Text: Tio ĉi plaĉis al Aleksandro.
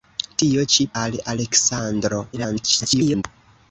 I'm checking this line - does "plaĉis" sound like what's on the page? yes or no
no